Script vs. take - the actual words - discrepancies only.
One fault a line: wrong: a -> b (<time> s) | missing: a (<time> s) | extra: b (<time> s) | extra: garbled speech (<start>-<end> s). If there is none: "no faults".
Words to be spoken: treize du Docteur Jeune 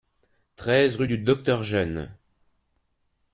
extra: rue (0.9 s)